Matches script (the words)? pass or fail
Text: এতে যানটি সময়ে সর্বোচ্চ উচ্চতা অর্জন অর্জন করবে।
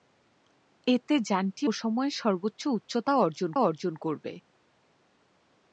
pass